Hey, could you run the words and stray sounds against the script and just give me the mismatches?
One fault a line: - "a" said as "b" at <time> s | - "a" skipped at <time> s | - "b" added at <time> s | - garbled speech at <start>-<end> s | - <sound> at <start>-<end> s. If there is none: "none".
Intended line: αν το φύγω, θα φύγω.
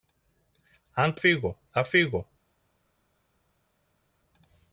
none